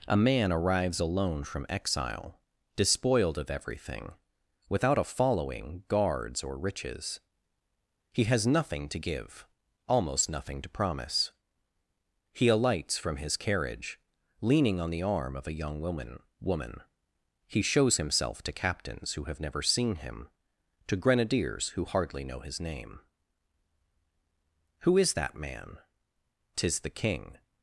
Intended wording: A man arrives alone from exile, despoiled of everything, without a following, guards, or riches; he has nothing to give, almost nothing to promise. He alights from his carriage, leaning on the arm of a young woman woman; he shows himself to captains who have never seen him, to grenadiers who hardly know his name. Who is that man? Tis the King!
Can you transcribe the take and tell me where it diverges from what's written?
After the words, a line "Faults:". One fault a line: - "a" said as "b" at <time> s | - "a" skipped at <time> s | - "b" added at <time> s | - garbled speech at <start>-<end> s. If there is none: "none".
A man arrives alone from exile, despoiled of everything, without a following, guards, or riches; he has nothing to give, almost nothing to promise. He alights from his carriage, leaning on the arm of a young woman woman; he shows himself to captains who have never seen him, to grenadiers who hardly know his name. Who is that man? Tis the King!
Faults:
none